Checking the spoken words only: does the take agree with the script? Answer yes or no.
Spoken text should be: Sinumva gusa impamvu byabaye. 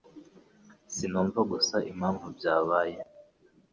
yes